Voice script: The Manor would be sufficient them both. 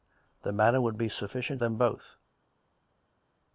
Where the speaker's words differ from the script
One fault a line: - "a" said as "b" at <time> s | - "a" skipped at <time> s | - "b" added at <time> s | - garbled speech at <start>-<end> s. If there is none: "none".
none